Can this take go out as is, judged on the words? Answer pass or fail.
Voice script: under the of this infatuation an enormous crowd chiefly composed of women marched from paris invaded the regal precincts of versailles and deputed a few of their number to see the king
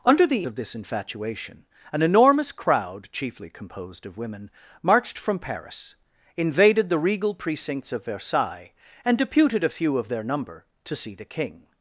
pass